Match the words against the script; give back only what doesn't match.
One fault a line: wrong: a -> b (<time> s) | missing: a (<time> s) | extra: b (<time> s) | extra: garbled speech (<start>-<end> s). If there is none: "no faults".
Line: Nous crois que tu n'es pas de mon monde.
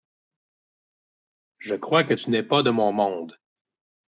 wrong: Nous -> Je (1.6 s)